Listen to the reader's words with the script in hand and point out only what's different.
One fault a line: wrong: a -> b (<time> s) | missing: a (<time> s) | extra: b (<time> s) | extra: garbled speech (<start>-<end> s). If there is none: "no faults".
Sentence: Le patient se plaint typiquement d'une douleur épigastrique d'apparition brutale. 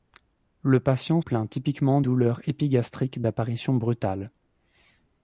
missing: se (1.2 s)
missing: d'une (2.0 s)